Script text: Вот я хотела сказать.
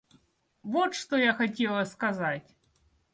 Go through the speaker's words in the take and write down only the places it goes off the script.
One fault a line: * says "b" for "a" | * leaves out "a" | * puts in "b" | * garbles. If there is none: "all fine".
* puts in "что"